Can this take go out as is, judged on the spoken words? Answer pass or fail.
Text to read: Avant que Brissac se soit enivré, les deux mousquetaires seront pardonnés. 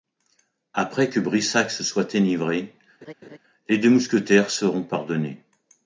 fail